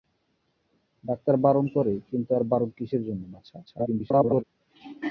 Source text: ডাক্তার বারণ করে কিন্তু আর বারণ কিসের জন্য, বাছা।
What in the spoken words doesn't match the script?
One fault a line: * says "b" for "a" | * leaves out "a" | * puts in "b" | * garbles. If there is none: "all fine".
* garbles